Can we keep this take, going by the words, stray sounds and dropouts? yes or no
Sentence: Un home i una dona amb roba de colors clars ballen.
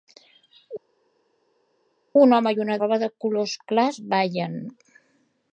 no